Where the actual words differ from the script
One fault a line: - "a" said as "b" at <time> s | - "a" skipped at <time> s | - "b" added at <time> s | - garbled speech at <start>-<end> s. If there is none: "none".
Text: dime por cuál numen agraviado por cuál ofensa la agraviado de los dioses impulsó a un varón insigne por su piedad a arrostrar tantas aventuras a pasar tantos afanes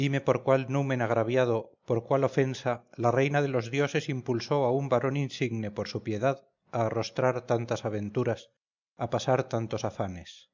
- "agraviado" said as "reina" at 3.1 s